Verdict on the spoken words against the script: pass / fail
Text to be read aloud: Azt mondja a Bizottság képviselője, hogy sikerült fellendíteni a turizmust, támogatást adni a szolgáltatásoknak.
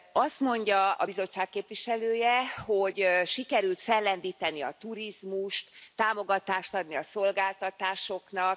pass